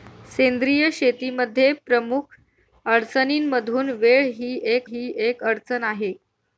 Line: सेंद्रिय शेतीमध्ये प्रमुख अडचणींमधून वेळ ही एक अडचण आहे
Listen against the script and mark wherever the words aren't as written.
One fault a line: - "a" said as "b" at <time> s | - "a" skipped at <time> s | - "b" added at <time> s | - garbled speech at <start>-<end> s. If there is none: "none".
- "ही एक" added at 4.8 s